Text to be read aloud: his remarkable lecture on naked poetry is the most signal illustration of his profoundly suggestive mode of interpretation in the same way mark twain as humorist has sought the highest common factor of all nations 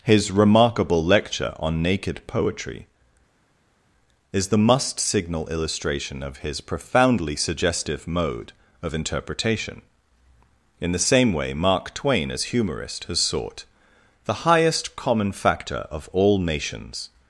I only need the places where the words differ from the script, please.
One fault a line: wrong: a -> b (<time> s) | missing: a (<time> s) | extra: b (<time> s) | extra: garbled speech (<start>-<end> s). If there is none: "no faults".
wrong: most -> must (4.6 s)